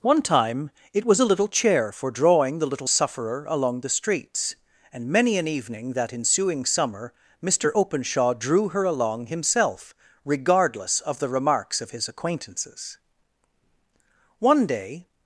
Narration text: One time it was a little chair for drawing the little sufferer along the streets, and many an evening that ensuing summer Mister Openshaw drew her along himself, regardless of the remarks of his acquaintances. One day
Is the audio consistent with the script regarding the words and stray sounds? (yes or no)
yes